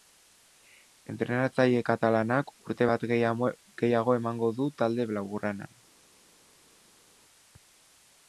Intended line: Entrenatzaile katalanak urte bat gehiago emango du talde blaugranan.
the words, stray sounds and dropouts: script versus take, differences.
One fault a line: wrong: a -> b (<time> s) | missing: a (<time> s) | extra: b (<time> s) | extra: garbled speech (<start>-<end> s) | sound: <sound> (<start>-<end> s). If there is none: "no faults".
no faults